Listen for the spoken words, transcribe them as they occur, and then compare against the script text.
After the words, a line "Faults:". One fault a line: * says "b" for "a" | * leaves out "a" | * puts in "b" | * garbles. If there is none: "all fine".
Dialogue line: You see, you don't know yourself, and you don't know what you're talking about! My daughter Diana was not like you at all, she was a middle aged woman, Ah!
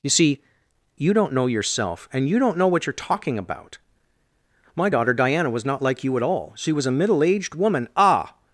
You see, you don't know yourself, and you don't know what you're talking about! My daughter Diana was not like you at all, she was a middle aged woman, Ah!
Faults:
all fine